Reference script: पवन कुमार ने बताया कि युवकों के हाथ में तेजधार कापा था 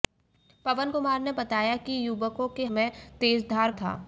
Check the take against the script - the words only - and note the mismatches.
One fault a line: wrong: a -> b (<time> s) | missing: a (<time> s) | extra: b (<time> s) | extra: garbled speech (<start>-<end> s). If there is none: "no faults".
missing: हाथ (2.6 s)
missing: कापा (3.7 s)